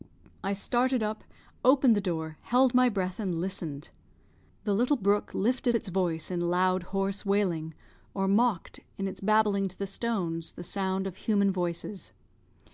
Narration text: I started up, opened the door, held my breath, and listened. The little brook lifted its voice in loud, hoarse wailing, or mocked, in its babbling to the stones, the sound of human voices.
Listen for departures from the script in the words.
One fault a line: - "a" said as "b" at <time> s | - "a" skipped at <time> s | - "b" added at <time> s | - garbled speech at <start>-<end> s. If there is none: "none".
none